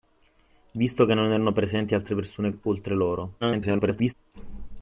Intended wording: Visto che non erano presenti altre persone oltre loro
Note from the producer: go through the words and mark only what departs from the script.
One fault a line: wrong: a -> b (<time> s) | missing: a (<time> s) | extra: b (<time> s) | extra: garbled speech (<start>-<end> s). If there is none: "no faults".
extra: garbled speech (3.4-4.1 s)